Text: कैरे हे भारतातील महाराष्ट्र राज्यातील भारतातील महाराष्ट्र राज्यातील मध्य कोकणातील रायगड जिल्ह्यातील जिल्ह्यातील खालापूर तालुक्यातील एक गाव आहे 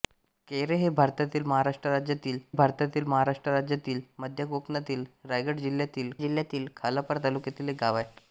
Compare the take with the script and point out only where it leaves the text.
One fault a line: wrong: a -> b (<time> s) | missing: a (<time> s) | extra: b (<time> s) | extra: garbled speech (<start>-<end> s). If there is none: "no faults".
no faults